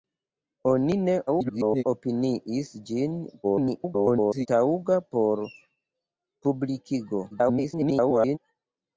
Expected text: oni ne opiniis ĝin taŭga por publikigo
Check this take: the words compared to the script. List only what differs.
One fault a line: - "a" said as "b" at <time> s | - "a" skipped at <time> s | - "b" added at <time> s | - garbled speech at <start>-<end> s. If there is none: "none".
- garbled speech at 1.3-1.8 s
- garbled speech at 3.4-4.5 s
- garbled speech at 7.3-8.4 s